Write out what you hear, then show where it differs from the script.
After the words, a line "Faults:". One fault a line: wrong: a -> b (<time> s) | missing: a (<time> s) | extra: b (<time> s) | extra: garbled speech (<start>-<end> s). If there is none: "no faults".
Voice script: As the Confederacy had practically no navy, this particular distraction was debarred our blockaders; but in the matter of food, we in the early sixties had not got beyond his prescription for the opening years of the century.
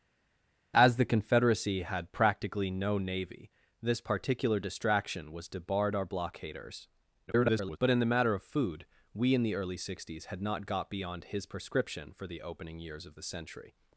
As the Confederacy had practically no navy, this particular distraction was debarred our blockaders; [garbled] but in the matter of food, we in the early sixties had not got beyond his prescription for the opening years of the century.
Faults:
extra: garbled speech (7.3-7.8 s)